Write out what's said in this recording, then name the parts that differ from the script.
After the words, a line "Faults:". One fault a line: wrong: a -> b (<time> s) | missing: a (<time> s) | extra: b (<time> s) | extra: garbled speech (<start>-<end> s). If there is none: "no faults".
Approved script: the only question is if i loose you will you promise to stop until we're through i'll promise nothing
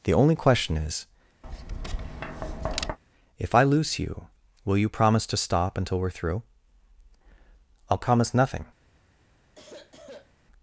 the only question is if i loose you will you promise to stop until we're through i'll promise nothing
Faults:
no faults